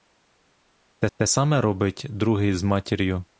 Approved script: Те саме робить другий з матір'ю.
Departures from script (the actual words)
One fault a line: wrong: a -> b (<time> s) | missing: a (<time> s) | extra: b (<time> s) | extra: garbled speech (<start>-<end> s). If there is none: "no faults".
extra: те (1.2 s)